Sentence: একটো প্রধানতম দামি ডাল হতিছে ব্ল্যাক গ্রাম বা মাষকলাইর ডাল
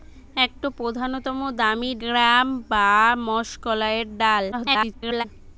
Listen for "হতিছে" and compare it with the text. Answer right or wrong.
wrong